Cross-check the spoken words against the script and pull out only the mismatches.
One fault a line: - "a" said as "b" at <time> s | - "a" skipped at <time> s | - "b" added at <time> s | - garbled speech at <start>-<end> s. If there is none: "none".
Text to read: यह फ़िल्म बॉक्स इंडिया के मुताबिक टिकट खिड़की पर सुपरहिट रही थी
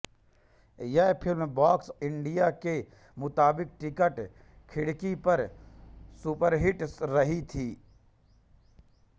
none